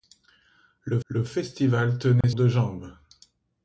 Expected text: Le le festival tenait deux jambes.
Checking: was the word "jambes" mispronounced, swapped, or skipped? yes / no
no